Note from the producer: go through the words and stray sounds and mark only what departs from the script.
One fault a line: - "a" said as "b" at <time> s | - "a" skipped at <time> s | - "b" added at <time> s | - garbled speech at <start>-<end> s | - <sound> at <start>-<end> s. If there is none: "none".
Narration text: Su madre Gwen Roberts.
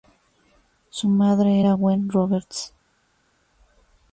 - "era" added at 1.6 s